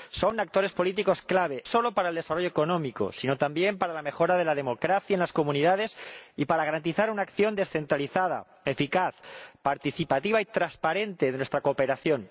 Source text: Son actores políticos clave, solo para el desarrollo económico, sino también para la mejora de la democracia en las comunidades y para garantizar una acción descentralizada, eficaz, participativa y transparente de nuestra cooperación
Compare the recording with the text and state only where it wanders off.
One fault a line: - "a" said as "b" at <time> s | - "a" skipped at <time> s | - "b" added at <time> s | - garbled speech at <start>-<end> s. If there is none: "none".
none